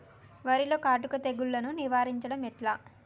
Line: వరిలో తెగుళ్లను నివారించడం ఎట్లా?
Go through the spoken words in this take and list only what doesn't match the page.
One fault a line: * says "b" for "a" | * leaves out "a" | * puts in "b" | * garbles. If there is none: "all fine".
* puts in "కాటుక"